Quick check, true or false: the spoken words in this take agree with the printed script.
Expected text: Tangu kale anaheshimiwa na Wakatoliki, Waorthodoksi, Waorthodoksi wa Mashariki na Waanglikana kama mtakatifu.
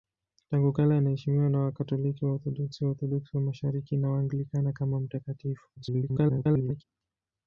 false